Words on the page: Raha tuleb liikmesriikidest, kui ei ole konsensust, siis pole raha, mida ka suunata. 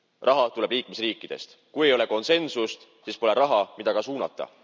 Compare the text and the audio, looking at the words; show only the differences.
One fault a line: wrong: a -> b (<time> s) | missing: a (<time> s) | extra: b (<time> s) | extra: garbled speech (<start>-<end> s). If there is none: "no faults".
no faults